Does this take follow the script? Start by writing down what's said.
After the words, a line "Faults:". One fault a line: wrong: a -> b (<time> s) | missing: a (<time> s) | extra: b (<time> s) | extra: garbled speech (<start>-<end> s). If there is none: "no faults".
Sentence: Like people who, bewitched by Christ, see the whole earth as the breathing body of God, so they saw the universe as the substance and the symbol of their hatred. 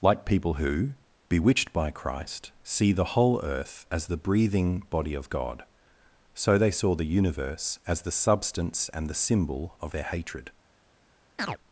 Like people who, bewitched by Christ, see the whole earth as the breathing body of God, so they saw the universe as the substance and the symbol of their hatred.
Faults:
no faults